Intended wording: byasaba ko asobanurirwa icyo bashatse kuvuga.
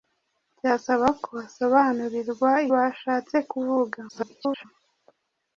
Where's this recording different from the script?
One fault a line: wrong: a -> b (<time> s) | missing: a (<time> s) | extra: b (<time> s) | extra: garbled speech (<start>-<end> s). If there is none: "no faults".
missing: icyo (2.5 s)
extra: garbled speech (4.1-4.7 s)